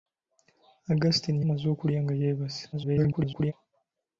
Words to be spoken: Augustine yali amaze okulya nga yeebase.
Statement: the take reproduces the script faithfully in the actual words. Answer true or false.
false